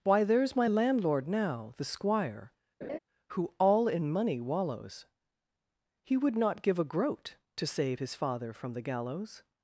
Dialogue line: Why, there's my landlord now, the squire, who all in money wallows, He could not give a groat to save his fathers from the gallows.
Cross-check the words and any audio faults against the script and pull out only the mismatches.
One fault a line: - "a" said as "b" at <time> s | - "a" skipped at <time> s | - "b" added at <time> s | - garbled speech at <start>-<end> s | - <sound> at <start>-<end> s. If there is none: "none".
- laugh at 2.8-3.0 s
- "could" said as "would" at 6.2 s
- "fathers" said as "father" at 8.1 s